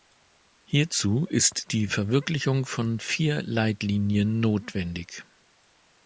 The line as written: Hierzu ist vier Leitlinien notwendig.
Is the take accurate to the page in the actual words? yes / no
no